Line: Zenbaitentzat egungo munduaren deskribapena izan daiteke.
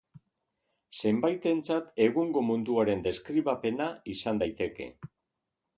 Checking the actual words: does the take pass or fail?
pass